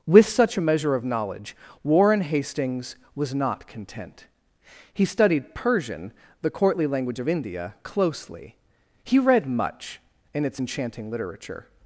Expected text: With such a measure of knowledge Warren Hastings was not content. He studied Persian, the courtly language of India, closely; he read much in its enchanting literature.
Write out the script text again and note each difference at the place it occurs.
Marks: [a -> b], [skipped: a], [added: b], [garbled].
With such a measure of knowledge Warren Hastings was not content. He studied Persian, the courtly language of India, closely; he read much in its enchanting literature.